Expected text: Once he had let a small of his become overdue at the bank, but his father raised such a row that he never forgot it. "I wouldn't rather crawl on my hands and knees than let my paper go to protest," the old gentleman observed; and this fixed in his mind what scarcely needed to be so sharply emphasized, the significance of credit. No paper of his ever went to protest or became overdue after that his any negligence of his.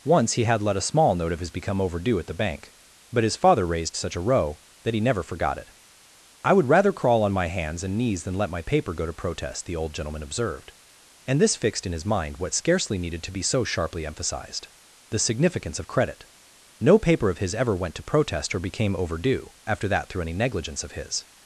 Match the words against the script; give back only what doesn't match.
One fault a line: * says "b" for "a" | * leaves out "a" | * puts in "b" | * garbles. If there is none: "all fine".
* puts in "note"
* says "would" for "wouldn't"
* says "through" for "his"